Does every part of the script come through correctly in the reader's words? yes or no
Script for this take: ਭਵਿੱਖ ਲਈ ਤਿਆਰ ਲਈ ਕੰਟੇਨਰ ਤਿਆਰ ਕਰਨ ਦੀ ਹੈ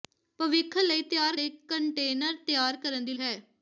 yes